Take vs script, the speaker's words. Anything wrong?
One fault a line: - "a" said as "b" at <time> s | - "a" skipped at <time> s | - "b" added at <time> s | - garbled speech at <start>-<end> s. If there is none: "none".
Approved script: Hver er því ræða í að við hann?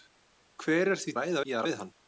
none